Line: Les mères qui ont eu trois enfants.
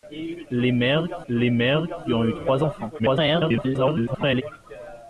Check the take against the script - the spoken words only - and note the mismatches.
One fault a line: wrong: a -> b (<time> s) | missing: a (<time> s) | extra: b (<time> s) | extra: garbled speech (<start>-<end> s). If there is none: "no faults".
extra: les mères (1.3 s)
extra: garbled speech (3.0-4.4 s)